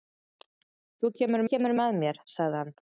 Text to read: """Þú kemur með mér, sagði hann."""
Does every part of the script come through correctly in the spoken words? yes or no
no